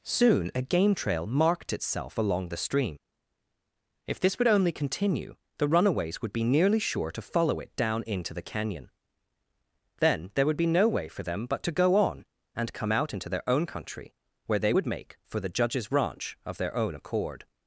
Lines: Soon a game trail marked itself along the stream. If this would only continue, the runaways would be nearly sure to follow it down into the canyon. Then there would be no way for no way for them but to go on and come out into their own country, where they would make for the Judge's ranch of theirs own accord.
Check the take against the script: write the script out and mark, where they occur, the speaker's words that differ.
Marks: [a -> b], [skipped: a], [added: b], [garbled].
Soon a game trail marked itself along the stream. If this would only continue, the runaways would be nearly sure to follow it down into the canyon. Then there would be no way for [skipped: no way for] them but to go on and come out into their own country, where they would make for the Judge's ranch of [theirs -> their] own accord.